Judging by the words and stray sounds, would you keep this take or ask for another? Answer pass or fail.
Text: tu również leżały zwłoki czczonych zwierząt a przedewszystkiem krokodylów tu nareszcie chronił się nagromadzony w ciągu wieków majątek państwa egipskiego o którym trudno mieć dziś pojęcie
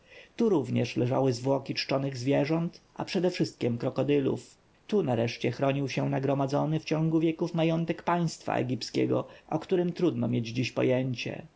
pass